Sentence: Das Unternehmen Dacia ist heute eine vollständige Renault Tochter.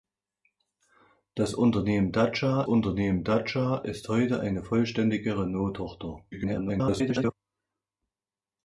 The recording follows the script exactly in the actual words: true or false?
false